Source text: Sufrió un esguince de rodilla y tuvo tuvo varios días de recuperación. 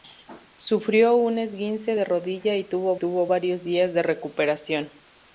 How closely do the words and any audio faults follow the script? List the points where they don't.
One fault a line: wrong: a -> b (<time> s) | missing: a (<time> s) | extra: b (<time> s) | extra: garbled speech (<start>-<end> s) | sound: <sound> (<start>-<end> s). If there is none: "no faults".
no faults